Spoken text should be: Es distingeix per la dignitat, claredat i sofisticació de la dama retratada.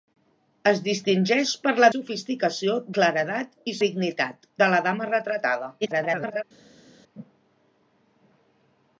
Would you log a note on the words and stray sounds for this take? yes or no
yes